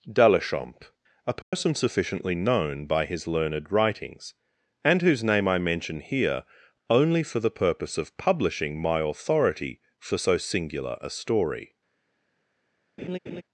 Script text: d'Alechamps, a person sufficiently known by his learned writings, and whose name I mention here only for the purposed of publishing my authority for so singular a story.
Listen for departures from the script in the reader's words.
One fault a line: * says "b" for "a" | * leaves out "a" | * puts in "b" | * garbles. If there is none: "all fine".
* says "purpose" for "purposed"